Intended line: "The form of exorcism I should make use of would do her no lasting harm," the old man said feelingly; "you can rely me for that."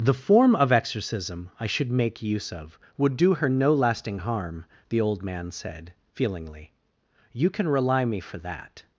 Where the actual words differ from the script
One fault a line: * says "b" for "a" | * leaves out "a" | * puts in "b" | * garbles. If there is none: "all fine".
all fine